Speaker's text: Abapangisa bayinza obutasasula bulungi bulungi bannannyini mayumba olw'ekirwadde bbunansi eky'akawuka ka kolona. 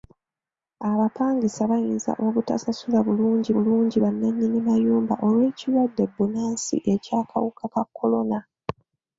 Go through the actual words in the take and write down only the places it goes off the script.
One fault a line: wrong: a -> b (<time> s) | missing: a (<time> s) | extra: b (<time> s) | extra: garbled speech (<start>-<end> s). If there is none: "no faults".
no faults